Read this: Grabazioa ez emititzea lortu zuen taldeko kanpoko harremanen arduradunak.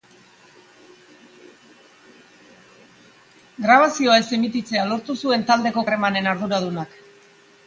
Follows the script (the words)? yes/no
no